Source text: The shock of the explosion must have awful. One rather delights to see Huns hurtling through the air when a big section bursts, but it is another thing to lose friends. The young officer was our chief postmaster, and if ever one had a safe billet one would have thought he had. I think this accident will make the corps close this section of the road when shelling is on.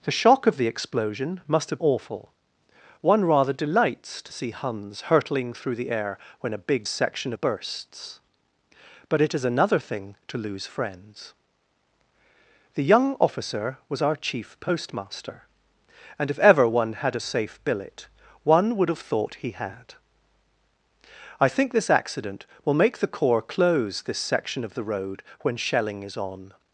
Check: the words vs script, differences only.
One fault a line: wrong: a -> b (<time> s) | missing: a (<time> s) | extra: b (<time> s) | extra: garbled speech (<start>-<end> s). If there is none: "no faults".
no faults